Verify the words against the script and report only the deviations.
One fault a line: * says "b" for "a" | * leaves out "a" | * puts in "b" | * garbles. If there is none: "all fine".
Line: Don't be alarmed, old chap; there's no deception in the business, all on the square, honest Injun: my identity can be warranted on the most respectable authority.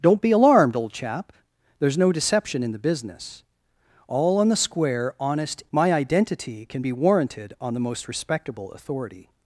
* leaves out "Injun"